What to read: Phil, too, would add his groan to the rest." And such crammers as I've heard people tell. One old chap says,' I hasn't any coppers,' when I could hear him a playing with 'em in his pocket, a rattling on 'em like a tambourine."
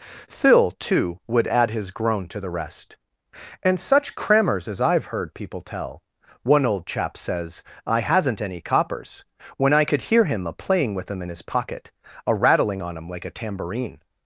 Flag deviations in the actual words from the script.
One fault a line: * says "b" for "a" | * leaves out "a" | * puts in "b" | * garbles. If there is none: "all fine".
all fine